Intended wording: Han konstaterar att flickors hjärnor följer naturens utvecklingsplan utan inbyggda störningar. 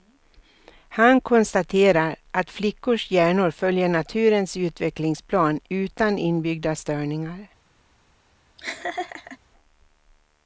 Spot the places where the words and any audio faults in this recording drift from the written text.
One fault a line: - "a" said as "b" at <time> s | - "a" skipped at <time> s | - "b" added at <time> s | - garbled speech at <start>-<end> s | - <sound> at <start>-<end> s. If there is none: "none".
- laugh at 8.6-9.4 s